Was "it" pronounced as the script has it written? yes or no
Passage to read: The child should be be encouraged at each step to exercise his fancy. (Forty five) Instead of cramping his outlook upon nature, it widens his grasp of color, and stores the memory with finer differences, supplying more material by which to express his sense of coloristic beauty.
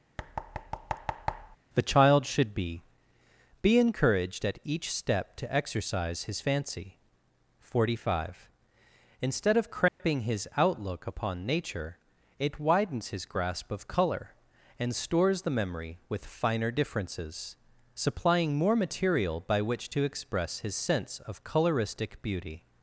yes